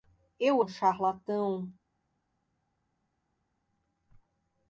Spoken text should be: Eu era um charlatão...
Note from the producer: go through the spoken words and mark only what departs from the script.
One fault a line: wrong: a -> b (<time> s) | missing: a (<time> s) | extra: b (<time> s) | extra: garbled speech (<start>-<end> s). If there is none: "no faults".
missing: era (0.7 s)